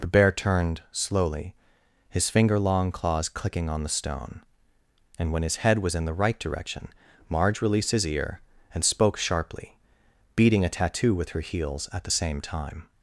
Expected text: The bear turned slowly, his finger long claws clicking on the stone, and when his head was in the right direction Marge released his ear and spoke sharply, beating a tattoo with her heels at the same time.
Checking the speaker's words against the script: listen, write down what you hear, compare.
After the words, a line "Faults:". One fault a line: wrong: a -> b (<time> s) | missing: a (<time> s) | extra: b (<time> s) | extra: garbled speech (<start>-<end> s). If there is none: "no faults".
The bear turned slowly, his finger long claws clicking on the stone, and when his head was in the right direction Marge released his ear and spoke sharply, beating a tattoo with her heels at the same time.
Faults:
no faults